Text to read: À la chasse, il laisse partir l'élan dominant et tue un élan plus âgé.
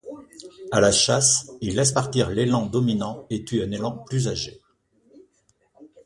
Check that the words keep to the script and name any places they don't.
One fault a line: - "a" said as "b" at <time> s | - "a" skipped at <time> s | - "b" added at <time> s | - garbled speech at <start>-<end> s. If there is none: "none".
none